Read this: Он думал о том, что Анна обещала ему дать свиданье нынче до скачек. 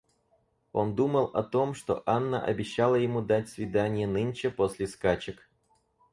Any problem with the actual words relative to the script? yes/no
yes